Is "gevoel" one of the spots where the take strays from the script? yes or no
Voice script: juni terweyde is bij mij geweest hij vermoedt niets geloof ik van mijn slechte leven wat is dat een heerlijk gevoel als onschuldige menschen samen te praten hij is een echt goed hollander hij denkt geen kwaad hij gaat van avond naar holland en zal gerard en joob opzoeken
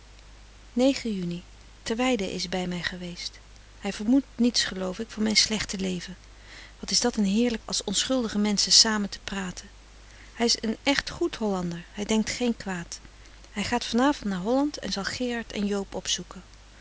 yes